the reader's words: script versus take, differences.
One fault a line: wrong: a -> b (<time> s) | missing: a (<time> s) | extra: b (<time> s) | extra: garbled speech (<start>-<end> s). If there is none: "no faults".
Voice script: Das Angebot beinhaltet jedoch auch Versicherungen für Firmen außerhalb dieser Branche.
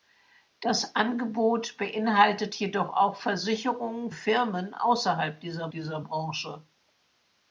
missing: für (4.1 s)
extra: dieser (5.7 s)